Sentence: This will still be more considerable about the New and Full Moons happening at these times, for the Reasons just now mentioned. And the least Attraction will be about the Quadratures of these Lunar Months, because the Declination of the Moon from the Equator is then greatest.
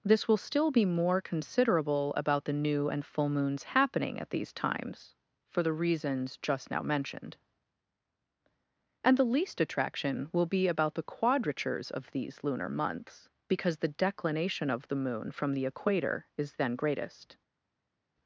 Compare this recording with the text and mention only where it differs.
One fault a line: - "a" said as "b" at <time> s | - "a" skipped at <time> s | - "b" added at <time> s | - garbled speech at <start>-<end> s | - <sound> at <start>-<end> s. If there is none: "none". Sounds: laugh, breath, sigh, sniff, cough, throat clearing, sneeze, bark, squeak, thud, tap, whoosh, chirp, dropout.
none